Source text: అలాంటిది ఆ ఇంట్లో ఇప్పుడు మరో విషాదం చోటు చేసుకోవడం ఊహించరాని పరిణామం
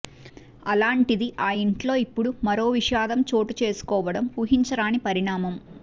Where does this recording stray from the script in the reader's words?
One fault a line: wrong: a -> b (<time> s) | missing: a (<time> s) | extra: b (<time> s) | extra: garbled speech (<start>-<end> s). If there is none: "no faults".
no faults